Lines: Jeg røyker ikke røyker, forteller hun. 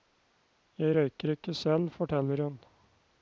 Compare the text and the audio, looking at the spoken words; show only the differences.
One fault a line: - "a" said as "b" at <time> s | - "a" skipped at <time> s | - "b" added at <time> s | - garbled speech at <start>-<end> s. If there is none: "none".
- "røyker" said as "selv" at 1.5 s